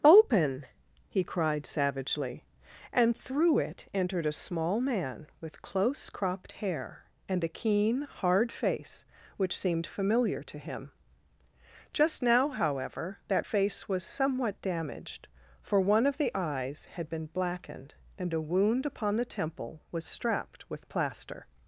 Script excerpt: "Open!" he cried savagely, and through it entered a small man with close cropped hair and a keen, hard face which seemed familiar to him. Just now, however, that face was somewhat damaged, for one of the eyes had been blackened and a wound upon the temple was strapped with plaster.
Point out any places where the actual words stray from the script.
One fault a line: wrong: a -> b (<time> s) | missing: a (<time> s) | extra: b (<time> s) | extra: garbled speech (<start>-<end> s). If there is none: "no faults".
no faults